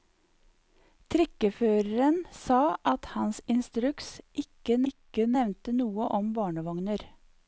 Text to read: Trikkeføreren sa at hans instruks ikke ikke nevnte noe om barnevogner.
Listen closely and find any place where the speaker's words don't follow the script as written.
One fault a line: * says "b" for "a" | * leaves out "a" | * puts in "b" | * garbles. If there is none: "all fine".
all fine